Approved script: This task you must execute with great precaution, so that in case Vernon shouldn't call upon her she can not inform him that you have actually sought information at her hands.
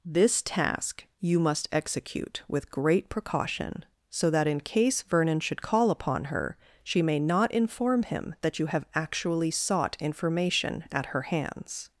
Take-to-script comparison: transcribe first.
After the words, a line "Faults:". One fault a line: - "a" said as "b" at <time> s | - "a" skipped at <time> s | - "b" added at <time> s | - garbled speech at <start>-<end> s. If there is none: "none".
This task you must execute with great precaution, so that in case Vernon should call upon her she may not inform him that you have actually sought information at her hands.
Faults:
- "shouldn't" said as "should" at 5.4 s
- "can" said as "may" at 7.0 s